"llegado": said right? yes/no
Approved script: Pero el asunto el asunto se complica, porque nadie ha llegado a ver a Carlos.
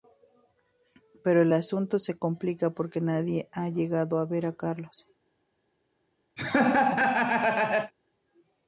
yes